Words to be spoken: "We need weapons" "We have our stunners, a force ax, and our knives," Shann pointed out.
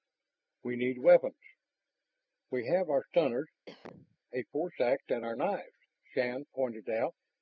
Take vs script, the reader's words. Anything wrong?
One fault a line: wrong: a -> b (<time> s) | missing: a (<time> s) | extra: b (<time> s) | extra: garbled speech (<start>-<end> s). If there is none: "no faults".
no faults